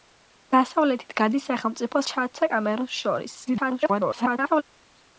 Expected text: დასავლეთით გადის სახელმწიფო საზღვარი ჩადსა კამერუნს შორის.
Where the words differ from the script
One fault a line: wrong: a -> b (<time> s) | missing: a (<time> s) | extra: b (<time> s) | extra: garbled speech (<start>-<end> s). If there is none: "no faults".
missing: საზღვარი (2.0 s)
extra: garbled speech (3.5-4.6 s)